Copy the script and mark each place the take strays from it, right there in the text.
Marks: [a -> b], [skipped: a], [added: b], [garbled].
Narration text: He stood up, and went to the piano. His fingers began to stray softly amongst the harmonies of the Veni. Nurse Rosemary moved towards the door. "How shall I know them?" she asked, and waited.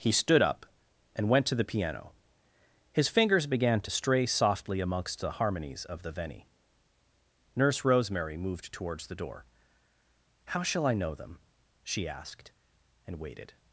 He stood up, and went to the piano. His fingers began to stray softly amongst the harmonies of the Veni. Nurse Rosemary moved towards the door. "How shall I know them?" she asked, and waited.